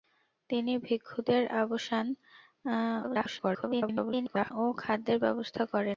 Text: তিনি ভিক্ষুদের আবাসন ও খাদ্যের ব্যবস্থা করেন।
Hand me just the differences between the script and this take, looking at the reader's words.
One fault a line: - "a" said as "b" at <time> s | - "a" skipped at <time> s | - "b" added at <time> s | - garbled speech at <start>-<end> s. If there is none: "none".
- garbled speech at 3.0-4.5 s